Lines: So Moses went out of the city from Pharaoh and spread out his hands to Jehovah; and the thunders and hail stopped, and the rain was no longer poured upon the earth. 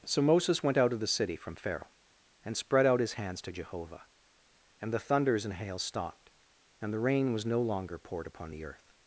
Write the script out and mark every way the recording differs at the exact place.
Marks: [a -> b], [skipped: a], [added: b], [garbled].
So Moses went out of the city from Pharaoh and spread out his hands to Jehovah; and the thunders and hail stopped, and the rain was no longer poured upon the earth.